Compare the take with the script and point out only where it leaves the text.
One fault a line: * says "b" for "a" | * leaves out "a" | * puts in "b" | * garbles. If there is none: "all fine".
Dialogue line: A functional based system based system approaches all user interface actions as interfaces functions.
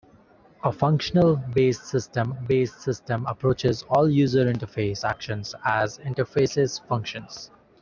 all fine